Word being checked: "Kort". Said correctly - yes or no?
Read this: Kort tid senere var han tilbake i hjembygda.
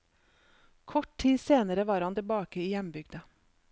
yes